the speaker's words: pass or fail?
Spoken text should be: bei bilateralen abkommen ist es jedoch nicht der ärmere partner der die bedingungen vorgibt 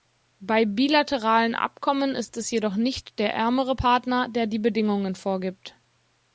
pass